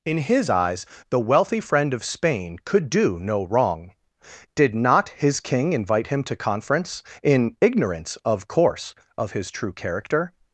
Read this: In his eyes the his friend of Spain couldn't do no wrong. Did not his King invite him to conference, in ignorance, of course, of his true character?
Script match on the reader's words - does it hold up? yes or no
no